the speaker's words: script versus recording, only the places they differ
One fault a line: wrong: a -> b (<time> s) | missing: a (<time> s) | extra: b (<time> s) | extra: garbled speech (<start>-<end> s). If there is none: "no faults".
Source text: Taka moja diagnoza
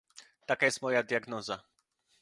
extra: jest (0.6 s)